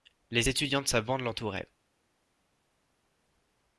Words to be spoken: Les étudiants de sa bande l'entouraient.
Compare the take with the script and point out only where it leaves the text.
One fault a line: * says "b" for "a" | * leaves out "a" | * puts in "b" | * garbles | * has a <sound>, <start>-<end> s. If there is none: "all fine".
all fine